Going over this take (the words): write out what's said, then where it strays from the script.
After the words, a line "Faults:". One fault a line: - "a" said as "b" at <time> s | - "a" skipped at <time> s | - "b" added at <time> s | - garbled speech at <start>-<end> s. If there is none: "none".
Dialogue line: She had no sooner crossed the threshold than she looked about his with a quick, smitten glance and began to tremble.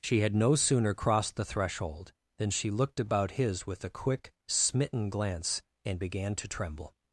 She had no sooner crossed the threshold than she looked about his with a quick, smitten glance and began to tremble.
Faults:
none